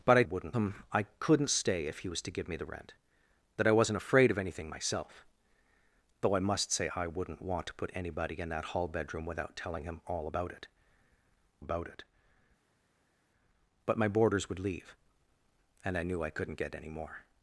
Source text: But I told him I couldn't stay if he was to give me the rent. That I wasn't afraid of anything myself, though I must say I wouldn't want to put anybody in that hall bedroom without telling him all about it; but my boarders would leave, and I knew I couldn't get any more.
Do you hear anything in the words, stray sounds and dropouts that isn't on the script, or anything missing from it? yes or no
yes